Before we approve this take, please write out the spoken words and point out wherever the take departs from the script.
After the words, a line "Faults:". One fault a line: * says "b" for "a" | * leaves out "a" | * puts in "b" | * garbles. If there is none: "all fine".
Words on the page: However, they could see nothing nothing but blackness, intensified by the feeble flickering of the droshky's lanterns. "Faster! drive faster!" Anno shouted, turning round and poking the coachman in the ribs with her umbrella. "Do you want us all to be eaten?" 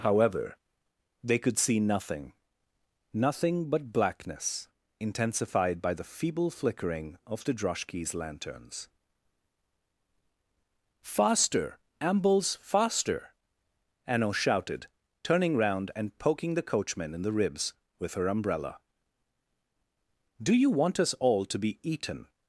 However, they could see nothing nothing but blackness, intensified by the feeble flickering of the droshky's lanterns. "Faster! ambles faster!" Anno shouted, turning round and poking the coachman in the ribs with her umbrella. "Do you want us all to be eaten?"
Faults:
* says "ambles" for "drive"